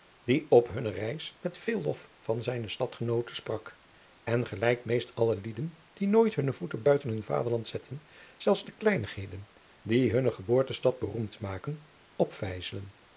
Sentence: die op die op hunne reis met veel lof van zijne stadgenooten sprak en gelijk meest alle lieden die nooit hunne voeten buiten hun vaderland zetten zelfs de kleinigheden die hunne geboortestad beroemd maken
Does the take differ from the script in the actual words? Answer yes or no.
yes